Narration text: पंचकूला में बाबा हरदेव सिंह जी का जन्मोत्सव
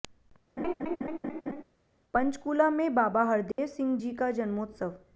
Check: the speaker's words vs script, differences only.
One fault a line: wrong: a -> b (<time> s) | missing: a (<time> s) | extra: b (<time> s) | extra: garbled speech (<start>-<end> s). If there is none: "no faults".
no faults